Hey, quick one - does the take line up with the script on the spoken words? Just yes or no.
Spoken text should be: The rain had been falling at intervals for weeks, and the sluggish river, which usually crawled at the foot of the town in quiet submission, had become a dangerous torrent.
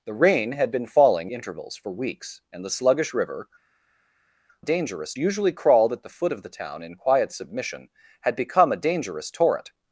no